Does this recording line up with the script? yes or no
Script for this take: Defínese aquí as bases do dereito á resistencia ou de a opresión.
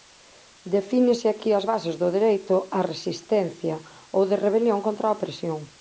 no